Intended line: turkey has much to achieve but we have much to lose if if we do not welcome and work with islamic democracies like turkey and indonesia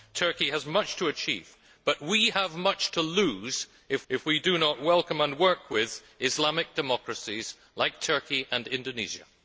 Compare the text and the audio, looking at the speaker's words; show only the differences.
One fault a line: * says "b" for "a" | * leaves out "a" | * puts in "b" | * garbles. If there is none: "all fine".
all fine